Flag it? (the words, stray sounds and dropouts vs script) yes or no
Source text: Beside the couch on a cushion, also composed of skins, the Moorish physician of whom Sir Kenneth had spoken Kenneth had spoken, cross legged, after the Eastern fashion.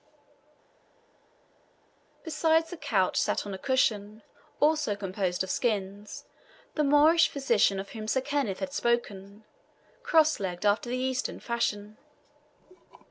yes